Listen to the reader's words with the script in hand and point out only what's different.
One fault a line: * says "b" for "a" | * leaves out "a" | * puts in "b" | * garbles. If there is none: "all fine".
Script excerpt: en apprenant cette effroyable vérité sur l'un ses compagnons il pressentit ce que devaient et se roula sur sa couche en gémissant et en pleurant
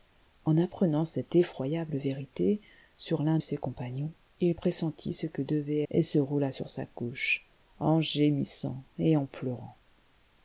all fine